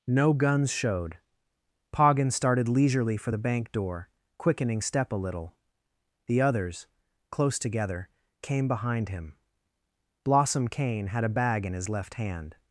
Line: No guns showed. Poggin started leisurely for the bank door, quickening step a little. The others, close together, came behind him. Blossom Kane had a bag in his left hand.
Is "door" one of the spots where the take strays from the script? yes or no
no